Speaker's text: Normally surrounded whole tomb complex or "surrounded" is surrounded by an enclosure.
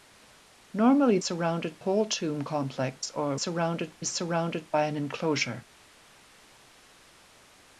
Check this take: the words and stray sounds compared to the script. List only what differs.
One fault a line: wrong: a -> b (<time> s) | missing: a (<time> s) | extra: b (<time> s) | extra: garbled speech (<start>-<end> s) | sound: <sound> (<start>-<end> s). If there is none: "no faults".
no faults